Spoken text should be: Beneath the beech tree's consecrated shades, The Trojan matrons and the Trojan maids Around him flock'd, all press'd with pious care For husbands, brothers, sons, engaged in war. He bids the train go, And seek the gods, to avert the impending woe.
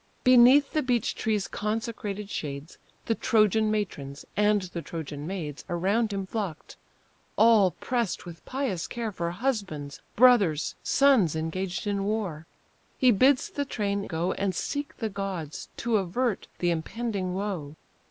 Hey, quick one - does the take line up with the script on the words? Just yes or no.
yes